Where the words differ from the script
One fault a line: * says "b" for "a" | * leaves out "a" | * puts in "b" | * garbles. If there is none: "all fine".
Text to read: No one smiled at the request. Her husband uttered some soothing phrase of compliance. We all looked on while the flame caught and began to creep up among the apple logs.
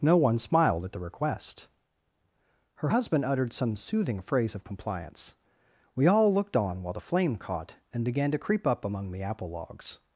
all fine